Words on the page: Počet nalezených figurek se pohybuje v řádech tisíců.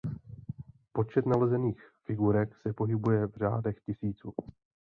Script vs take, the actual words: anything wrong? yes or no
no